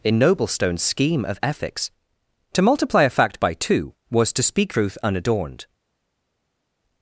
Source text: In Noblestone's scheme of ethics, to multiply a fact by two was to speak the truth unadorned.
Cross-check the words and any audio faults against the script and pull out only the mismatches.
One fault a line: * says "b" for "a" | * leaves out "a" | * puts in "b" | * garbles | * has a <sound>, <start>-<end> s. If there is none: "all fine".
* leaves out "the"